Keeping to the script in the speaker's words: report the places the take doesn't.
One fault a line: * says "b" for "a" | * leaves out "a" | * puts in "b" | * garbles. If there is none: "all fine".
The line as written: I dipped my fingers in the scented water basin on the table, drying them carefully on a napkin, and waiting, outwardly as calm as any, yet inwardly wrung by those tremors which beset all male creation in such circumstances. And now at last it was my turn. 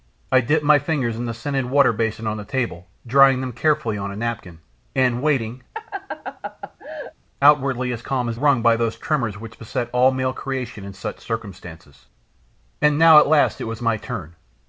* leaves out "any yet inwardly"